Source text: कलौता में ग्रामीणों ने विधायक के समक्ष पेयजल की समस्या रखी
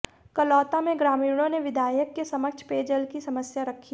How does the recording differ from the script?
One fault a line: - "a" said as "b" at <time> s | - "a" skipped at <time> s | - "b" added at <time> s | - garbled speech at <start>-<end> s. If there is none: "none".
none